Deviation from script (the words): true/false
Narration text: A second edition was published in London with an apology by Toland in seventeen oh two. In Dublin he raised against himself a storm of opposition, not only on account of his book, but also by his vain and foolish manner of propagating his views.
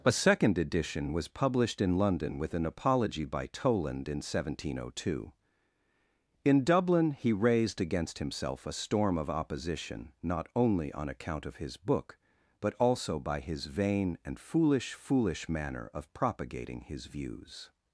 true